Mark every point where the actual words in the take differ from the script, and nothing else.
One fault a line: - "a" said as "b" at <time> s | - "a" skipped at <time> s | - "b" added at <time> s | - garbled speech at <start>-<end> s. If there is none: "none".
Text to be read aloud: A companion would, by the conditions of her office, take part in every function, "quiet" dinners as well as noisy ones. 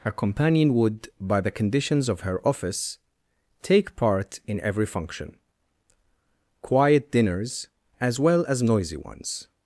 - "A" said as "Her" at 0.0 s